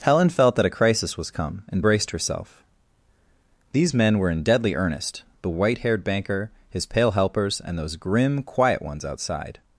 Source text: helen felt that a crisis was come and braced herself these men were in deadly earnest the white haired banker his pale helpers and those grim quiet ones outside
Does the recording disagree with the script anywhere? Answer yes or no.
no